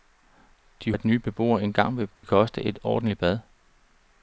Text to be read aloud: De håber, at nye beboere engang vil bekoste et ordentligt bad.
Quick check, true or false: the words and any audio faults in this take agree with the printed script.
false